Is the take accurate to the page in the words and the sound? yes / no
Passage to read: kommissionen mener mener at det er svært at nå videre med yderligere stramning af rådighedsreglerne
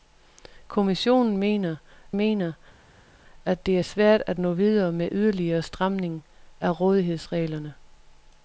yes